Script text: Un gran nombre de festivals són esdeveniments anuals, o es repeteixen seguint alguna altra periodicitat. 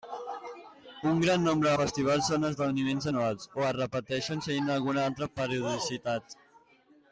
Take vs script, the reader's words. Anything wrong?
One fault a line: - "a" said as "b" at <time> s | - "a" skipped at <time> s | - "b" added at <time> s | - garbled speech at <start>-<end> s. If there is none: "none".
- "de" skipped at 1.7 s